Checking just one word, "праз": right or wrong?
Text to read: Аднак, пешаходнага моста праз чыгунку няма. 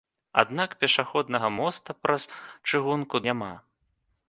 right